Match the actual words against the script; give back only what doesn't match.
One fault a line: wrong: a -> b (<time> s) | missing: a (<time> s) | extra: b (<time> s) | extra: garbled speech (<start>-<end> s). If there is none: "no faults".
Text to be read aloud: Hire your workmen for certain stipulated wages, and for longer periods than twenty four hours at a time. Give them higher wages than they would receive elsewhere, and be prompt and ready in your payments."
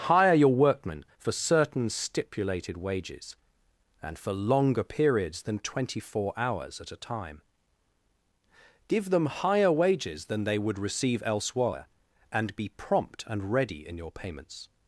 no faults